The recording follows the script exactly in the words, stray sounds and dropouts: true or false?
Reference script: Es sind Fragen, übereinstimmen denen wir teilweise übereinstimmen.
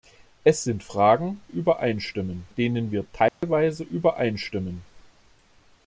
false